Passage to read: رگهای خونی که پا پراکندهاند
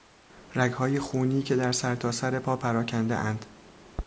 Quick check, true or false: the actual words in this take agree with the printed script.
false